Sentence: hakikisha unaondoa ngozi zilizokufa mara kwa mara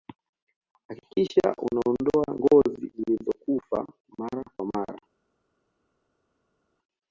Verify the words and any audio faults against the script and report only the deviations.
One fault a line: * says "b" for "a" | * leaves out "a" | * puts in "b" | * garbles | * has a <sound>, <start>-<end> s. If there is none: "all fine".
all fine